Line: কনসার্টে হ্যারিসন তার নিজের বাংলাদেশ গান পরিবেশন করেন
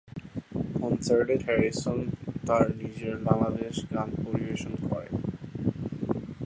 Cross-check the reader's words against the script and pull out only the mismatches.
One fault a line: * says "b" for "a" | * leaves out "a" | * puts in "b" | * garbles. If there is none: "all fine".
all fine